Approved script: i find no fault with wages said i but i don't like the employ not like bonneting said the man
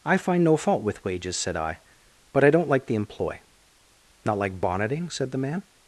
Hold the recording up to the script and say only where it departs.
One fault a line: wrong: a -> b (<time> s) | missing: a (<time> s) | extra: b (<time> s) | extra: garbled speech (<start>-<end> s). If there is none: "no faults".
no faults